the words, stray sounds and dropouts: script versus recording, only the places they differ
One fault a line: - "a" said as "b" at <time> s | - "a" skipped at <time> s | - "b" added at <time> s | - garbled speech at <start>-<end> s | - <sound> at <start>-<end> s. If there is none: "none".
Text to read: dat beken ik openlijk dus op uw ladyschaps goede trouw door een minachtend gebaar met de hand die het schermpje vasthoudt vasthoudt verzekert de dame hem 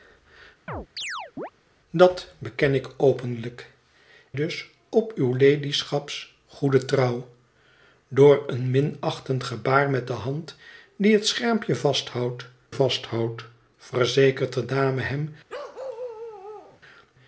- chirp at 0.7-1.5 s
- bark at 15.5-16.8 s